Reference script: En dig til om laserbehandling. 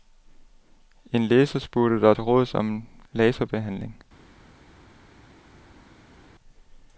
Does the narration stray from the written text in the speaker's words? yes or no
yes